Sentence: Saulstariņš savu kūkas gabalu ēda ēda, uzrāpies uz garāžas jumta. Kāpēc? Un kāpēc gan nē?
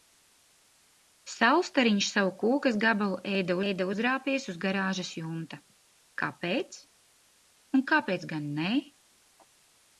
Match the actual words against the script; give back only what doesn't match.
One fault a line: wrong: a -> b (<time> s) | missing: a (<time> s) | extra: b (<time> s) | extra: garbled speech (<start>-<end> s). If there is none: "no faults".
no faults